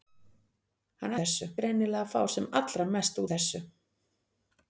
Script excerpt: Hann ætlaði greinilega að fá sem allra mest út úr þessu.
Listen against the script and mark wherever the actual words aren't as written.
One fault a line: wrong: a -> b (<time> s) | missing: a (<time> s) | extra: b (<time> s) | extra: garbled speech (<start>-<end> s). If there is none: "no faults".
wrong: ætlaði -> þessu (1.2 s)
missing: út (3.2 s)